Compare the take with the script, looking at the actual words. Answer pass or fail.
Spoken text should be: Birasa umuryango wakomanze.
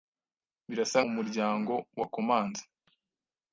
pass